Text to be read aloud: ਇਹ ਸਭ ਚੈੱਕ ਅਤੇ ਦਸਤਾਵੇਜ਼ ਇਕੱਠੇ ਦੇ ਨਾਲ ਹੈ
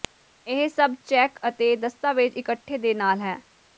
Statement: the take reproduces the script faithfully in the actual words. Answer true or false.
true